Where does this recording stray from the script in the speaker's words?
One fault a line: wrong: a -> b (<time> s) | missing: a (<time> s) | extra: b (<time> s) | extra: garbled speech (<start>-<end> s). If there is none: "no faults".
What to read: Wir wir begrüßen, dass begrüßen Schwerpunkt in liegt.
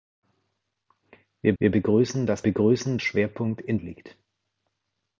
no faults